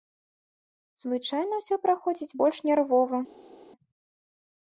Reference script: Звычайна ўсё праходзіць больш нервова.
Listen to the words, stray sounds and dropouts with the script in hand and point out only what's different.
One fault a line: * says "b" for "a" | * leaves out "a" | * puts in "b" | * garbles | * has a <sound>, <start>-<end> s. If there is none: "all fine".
all fine